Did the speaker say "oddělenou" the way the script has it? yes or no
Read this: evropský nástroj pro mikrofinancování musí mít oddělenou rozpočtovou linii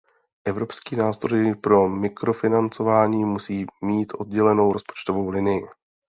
yes